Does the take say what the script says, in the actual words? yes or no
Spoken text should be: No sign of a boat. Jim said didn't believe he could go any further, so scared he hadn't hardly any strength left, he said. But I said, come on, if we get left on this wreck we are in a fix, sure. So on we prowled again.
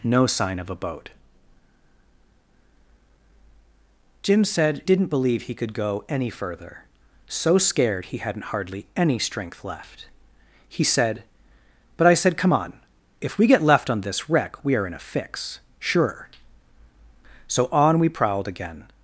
yes